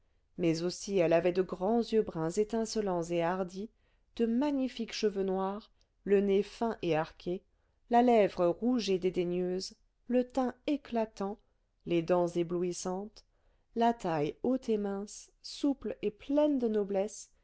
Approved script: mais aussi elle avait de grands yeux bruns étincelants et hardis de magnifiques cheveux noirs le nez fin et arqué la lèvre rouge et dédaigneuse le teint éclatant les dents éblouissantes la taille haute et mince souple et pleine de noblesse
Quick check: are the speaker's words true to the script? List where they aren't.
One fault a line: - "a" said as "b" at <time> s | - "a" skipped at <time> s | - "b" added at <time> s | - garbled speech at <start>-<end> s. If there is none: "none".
none